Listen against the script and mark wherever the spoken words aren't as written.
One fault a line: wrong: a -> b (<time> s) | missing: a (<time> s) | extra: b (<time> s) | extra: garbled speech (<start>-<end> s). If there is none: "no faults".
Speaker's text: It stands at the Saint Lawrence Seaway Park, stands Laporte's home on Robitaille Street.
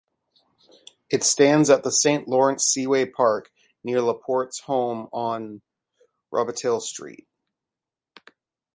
wrong: stands -> near (3.8 s)